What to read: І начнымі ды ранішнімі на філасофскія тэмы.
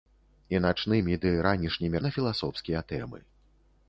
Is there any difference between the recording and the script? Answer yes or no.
no